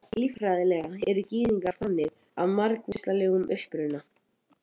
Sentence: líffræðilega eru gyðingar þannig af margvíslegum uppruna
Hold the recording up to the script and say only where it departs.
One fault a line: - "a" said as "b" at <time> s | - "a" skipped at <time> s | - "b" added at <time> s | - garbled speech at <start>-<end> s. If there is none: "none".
none